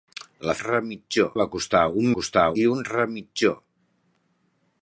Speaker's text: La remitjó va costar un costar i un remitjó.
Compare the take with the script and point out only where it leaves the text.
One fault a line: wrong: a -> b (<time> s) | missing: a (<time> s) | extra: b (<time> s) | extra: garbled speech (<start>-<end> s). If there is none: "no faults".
no faults